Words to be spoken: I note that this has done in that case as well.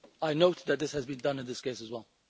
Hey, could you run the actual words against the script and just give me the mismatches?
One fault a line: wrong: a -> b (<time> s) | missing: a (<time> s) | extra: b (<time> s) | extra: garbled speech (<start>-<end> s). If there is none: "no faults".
extra: been (1.1 s)
wrong: that -> this (1.5 s)